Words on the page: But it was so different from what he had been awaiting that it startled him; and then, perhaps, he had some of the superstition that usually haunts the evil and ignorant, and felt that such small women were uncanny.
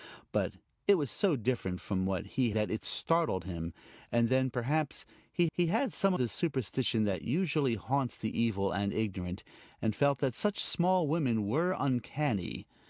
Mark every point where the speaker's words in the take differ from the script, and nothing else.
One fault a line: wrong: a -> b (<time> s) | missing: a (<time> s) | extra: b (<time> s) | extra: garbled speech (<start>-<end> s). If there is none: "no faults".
missing: had been awaiting (2.5 s)
extra: he (5.5 s)
missing: of (6.1 s)